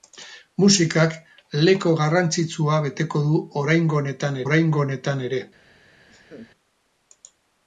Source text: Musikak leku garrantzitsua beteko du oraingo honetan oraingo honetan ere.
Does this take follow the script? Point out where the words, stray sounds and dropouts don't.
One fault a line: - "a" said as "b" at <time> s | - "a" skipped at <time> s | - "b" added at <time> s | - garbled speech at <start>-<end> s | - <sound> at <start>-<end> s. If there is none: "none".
- laugh at 6.1-6.5 s